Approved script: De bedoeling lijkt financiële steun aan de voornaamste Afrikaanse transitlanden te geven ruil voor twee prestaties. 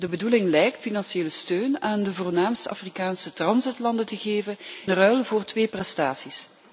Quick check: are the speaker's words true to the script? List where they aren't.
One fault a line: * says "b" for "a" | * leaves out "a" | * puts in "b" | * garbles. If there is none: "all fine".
all fine